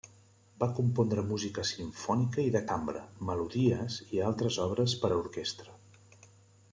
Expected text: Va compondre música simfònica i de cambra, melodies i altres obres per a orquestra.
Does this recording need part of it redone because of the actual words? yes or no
no